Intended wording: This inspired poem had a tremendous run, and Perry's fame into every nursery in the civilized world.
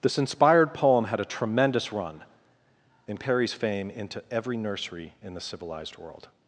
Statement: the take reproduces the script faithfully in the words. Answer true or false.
true